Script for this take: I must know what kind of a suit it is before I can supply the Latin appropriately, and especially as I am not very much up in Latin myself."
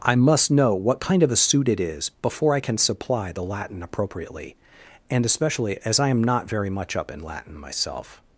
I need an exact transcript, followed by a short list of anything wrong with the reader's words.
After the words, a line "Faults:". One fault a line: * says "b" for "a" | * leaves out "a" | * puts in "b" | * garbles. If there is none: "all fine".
I must know what kind of a suit it is before I can supply the Latin appropriately, and especially as I am not very much up in Latin myself."
Faults:
all fine